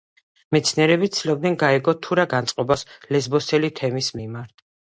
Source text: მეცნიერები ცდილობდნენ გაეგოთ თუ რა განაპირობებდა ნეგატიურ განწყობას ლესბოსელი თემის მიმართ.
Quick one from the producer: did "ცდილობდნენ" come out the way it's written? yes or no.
yes